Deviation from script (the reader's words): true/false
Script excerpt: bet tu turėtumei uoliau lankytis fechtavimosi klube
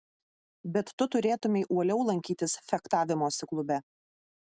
false